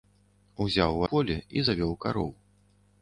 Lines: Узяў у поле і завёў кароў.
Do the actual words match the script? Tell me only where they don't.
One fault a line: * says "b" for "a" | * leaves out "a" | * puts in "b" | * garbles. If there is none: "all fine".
all fine